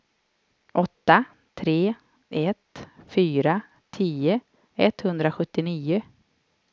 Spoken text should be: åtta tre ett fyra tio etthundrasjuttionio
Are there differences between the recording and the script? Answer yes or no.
no